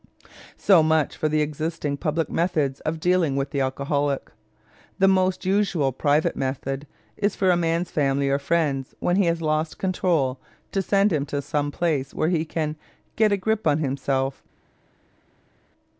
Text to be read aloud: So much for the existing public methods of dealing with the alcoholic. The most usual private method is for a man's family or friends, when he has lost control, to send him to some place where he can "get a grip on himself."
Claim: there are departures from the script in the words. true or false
false